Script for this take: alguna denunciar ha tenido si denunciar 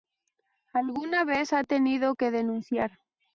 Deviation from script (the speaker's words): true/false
true